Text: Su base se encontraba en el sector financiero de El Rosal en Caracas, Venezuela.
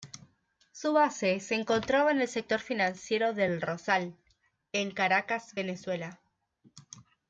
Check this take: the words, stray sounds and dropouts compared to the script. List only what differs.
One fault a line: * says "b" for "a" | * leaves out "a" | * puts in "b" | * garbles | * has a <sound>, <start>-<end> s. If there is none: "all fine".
all fine